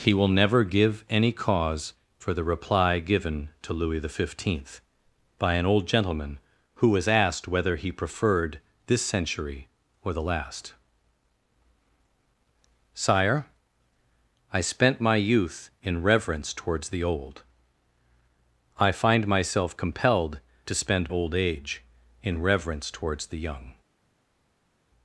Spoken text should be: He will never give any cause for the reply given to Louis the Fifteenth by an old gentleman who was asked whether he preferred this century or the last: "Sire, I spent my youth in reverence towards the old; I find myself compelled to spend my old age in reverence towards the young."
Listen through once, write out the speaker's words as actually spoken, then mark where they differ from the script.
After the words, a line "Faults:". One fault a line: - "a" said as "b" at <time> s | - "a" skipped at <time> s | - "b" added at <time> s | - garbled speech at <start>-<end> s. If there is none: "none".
He will never give any cause for the reply given to Louis the Fifteenth by an old gentleman who was asked whether he preferred this century or the last: "Sire, I spent my youth in reverence towards the old; I find myself compelled to spend old age in reverence towards the young."
Faults:
- "my" skipped at 21.1 s